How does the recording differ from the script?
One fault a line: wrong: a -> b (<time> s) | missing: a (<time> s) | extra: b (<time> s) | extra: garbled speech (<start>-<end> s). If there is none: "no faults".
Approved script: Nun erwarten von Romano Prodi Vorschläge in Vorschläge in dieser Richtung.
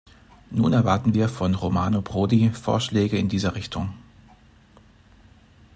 extra: wir (1.1 s)
missing: Vorschläge in (3.3 s)